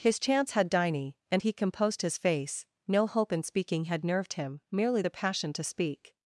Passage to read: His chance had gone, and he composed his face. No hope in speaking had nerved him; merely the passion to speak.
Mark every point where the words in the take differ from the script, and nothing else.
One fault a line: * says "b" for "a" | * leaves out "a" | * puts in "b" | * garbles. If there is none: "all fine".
* says "diny" for "gone"